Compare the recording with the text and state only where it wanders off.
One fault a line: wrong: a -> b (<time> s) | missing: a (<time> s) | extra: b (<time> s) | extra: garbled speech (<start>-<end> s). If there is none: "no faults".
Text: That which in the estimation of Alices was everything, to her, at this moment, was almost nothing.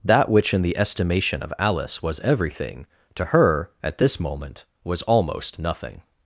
wrong: Alices -> Alice (1.6 s)